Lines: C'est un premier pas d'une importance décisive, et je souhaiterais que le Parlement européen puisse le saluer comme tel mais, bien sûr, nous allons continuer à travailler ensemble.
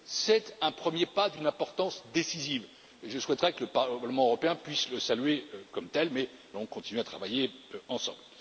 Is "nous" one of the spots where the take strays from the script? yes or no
yes